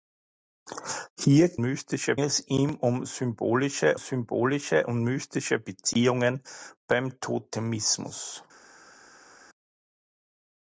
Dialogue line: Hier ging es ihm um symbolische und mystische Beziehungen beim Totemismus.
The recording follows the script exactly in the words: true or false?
false